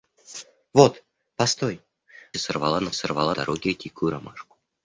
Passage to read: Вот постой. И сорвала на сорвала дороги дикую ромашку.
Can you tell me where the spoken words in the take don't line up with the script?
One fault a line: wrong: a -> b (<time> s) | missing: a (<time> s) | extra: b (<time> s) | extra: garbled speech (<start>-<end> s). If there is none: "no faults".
no faults